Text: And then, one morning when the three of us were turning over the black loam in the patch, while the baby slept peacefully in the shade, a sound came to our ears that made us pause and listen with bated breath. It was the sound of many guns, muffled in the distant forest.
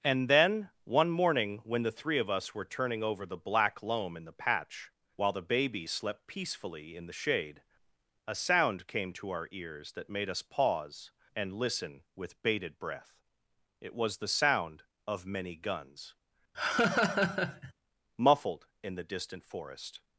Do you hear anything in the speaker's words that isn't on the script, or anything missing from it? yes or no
no